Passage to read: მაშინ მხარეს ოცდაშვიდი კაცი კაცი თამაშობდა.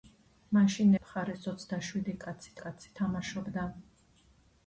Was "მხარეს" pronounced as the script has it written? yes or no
yes